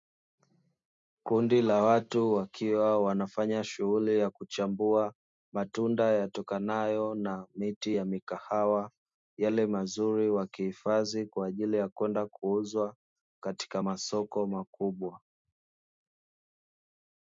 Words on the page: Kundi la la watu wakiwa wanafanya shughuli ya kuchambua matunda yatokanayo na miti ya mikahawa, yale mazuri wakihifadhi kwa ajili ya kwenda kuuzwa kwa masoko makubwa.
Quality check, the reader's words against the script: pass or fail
fail